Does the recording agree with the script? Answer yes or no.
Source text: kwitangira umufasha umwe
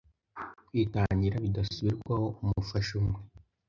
no